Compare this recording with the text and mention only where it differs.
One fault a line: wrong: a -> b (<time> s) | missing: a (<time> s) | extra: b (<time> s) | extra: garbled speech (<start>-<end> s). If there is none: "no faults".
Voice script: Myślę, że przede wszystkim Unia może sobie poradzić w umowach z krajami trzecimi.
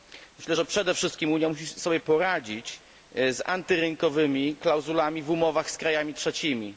wrong: może -> musi (1.5 s)
extra: z antyrynkowymi klauzulami (3.1 s)